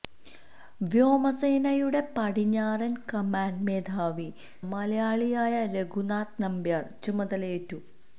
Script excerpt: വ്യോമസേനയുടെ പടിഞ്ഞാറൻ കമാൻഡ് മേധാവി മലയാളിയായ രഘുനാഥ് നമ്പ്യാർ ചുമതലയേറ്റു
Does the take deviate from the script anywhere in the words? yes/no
no